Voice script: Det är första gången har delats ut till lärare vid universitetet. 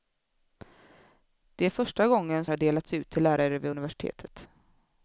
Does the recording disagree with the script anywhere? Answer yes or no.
no